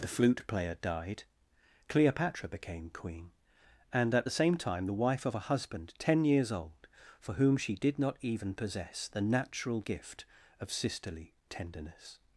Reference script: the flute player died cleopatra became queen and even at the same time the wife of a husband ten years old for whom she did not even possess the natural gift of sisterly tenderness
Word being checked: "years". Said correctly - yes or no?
yes